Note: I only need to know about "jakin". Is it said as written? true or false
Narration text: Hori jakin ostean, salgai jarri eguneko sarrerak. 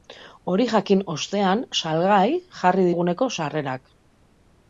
true